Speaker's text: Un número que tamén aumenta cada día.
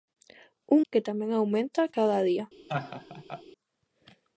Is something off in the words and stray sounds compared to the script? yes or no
yes